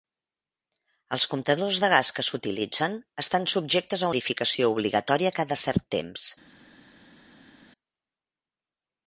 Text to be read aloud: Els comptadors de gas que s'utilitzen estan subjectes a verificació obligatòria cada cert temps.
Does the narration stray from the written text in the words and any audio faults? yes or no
no